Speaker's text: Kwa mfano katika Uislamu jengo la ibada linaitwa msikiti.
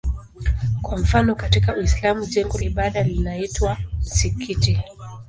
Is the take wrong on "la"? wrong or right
wrong